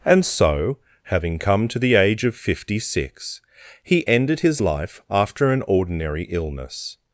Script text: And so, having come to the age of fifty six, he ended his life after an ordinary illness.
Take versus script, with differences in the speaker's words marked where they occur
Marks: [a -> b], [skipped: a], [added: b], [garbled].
And so, having come to the age of fifty six, he ended his life after an ordinary illness.